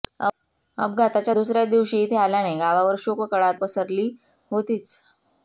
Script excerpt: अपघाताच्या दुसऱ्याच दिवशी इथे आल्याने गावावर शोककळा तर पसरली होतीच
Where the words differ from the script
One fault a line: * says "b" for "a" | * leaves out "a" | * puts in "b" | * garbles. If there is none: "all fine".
* leaves out "तर"